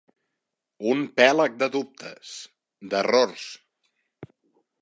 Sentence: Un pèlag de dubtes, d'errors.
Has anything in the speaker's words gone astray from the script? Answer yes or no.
no